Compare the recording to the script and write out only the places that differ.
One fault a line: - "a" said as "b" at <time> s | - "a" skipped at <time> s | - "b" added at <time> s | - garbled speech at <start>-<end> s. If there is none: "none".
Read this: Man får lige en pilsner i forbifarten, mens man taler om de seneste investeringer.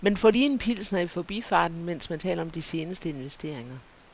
none